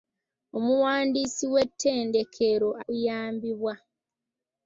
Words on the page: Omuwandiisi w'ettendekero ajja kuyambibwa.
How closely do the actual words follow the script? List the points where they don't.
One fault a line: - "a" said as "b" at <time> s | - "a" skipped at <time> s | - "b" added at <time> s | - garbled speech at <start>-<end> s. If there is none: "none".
- "ajja" skipped at 2.7 s